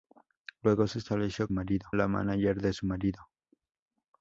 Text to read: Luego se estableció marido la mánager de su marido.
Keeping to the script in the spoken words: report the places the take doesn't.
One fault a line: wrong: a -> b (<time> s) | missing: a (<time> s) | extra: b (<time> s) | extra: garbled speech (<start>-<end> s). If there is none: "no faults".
no faults